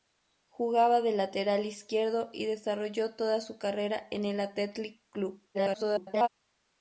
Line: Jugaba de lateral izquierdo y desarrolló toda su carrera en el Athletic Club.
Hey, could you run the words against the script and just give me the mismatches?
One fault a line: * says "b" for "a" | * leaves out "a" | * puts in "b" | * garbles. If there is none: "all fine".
* garbles